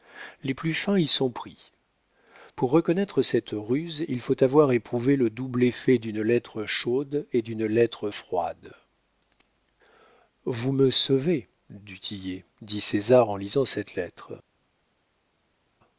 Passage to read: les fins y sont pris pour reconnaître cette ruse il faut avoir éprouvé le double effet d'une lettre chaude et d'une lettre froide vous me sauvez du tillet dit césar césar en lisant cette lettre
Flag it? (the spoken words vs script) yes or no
yes